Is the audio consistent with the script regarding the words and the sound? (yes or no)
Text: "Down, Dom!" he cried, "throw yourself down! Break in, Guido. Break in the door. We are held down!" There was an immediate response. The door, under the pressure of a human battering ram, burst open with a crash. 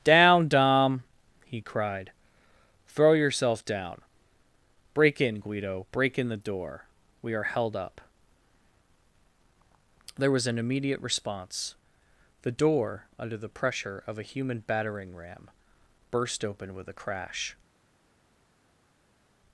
no